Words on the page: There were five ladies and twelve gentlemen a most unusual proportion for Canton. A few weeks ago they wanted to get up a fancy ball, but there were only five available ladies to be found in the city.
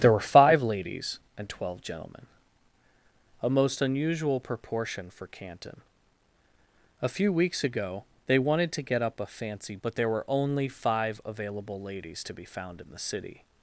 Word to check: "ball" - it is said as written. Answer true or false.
false